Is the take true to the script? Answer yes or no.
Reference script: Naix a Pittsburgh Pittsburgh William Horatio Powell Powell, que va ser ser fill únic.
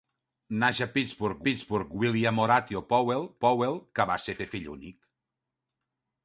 yes